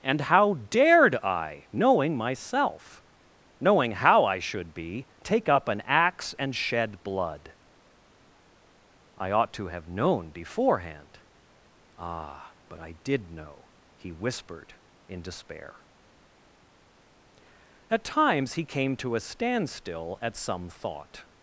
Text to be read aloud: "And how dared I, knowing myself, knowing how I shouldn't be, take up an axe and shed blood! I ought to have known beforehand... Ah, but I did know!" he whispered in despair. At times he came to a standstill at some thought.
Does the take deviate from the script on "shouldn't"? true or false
true